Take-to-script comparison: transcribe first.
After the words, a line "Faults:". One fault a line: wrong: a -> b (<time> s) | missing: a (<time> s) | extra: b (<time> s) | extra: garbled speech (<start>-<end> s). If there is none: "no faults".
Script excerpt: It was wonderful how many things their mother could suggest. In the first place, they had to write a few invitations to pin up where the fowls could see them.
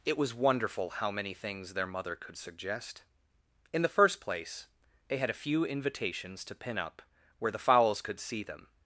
It was wonderful how many things their mother could suggest. In the first place, they had a few invitations to pin up where the fowls could see them.
Faults:
missing: to write (5.3 s)